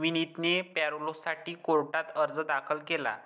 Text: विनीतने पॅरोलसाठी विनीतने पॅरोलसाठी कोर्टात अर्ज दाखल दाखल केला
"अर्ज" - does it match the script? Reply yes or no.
yes